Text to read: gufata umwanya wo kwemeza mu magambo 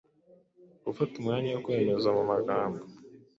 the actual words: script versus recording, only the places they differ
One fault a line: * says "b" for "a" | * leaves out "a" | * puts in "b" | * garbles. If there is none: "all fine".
all fine